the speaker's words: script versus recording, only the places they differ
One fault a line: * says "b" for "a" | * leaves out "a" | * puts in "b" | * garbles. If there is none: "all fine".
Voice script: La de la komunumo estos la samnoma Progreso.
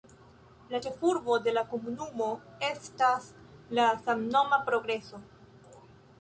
* puts in "ĉefurbo"
* says "estas" for "estos"